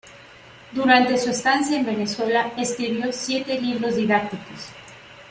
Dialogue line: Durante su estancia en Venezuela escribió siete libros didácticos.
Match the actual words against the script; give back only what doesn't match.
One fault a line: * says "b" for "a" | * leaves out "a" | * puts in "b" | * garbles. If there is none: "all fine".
all fine